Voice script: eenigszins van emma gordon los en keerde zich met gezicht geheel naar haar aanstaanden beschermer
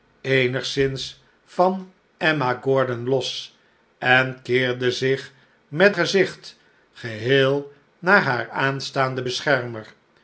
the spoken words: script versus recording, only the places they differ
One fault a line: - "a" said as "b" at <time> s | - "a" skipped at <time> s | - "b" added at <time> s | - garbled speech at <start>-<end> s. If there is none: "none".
none